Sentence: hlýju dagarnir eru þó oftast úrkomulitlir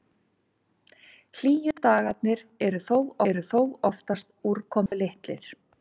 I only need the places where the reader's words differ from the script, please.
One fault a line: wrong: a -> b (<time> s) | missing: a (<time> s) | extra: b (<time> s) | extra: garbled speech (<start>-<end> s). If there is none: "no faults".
extra: eru þó (3.3 s)